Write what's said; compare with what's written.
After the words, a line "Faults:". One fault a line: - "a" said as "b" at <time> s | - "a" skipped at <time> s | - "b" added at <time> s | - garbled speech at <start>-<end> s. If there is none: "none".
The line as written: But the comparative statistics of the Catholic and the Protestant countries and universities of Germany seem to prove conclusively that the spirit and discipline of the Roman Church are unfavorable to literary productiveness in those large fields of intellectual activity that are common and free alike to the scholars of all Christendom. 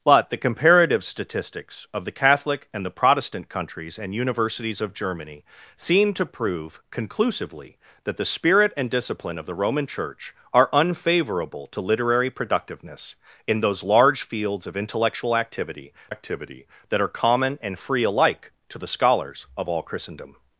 But the comparative statistics of the Catholic and the Protestant countries and universities of Germany seem to prove conclusively that the spirit and discipline of the Roman Church are unfavorable to literary productiveness in those large fields of intellectual activity activity that are common and free alike to the scholars of all Christendom.
Faults:
- "activity" added at 16.1 s